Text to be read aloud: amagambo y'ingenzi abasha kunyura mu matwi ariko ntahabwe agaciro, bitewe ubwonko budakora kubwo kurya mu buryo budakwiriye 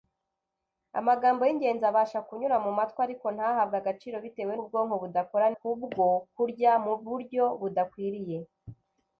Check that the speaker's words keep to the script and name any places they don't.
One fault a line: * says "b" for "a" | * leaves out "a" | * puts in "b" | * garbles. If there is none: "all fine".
all fine